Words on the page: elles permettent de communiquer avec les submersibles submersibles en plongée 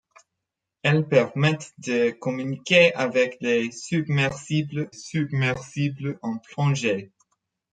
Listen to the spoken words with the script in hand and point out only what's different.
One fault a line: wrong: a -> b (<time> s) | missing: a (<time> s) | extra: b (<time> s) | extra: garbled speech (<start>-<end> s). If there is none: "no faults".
no faults